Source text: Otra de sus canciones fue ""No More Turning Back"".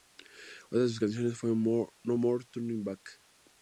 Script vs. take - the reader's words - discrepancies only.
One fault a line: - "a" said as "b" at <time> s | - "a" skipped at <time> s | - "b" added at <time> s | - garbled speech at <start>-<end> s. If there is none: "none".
none